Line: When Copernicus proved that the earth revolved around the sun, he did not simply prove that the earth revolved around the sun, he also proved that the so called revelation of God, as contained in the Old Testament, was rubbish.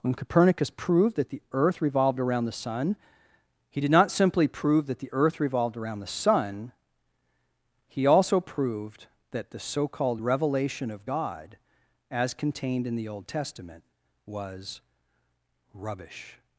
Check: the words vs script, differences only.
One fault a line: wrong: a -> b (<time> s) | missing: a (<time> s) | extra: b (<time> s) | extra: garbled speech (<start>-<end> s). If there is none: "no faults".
no faults